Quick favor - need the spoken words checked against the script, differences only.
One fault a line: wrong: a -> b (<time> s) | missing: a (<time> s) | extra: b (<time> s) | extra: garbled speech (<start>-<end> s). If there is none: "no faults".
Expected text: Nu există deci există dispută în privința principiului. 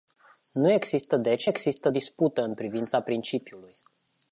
no faults